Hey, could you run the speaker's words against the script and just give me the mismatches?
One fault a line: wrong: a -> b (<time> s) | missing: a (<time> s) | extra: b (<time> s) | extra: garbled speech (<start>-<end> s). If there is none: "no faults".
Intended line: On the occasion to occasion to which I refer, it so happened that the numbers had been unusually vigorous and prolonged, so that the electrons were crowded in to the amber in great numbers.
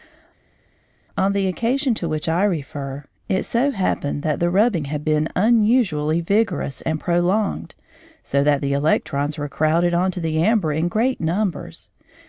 missing: occasion to (2.1 s)
wrong: numbers -> rubbing (4.5 s)
wrong: in -> on (9.9 s)